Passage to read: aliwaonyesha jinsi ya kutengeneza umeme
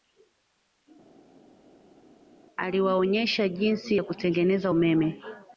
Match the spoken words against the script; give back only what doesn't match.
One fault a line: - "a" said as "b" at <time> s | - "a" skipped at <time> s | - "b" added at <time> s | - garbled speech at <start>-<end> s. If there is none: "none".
none